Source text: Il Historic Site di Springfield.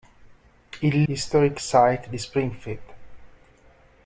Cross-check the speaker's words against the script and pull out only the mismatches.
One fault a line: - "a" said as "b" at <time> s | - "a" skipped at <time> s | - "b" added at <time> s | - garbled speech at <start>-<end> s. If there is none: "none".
none